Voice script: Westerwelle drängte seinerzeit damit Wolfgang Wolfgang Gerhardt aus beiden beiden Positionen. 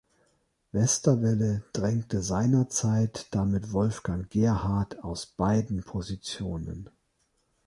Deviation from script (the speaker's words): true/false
true